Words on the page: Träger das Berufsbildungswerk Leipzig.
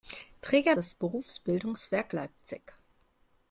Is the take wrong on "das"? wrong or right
right